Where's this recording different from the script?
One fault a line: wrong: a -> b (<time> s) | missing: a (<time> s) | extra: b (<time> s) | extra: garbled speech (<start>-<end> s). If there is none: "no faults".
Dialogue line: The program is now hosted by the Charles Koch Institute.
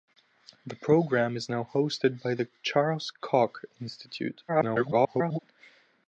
extra: garbled speech (4.5-5.4 s)